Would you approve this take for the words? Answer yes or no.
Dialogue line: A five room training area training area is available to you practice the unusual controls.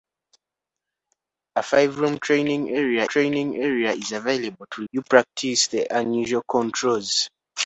yes